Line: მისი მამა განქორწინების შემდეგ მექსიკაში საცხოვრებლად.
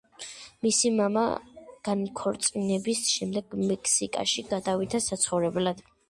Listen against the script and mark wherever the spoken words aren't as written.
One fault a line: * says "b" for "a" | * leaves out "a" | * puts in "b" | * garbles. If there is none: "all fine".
* puts in "გადავიდა"